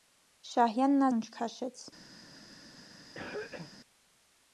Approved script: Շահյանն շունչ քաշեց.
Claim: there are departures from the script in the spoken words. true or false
false